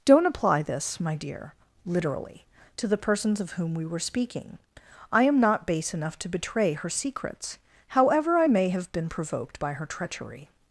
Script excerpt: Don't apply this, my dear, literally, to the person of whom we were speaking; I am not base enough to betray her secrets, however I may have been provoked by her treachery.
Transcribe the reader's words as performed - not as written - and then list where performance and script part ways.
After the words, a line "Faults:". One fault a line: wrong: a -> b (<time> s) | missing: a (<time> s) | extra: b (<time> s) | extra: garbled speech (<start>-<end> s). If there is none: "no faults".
Don't apply this, my dear, literally, to the persons of whom we were speaking; I am not base enough to betray her secrets, however I may have been provoked by her treachery.
Faults:
wrong: person -> persons (3.0 s)